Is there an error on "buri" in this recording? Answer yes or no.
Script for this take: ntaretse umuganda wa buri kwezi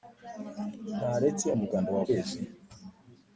yes